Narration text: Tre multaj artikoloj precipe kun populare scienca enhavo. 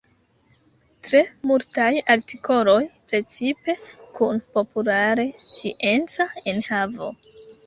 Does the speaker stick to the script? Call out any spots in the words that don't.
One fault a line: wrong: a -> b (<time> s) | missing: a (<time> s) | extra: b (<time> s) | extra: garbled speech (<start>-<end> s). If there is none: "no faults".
no faults